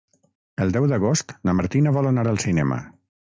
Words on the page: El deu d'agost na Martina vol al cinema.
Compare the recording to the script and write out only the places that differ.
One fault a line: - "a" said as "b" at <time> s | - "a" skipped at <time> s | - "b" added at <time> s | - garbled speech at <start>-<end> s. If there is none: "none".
- "anar" added at 2.1 s